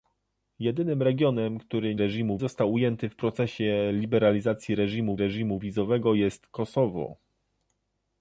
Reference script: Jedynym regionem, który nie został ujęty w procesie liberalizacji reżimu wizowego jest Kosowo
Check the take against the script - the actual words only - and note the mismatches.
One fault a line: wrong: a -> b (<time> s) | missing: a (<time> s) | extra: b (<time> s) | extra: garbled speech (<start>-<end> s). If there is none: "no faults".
wrong: nie -> reżimu (2.0 s)
extra: reżimu (5.2 s)